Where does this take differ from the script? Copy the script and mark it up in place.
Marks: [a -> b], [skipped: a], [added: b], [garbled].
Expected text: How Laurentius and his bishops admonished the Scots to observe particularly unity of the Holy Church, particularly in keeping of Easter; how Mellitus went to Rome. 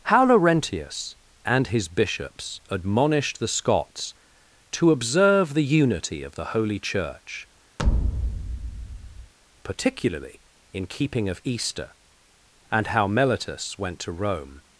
How Laurentius and his bishops admonished the Scots to observe [particularly -> the] unity of the Holy Church, particularly in keeping of Easter; [added: and] how Mellitus went to Rome.